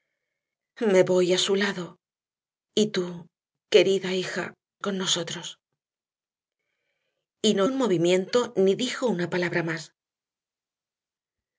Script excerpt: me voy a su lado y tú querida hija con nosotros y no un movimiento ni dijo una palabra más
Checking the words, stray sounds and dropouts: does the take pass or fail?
pass